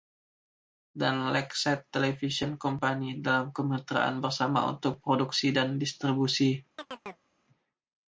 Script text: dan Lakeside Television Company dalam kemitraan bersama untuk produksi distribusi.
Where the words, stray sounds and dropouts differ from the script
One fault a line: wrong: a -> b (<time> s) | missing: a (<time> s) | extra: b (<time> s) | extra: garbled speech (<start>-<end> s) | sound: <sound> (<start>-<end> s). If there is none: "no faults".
extra: dan (5.5 s)
sound: chirp (6.8-7.3 s)